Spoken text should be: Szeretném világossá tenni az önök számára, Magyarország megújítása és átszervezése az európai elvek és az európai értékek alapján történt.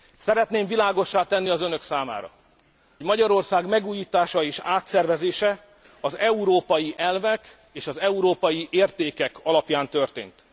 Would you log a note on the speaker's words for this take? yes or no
no